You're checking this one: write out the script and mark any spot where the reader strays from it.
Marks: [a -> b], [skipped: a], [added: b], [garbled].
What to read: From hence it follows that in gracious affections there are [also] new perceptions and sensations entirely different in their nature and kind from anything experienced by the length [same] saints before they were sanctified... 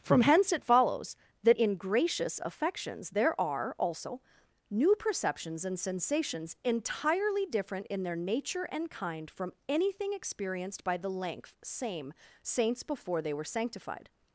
From hence it follows that in gracious affections there are [also] new perceptions and sensations entirely different in their nature and kind from anything experienced by the length [same] saints before they were sanctified...